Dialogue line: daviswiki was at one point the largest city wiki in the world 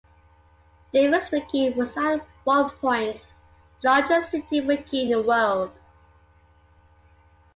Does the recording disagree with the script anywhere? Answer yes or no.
no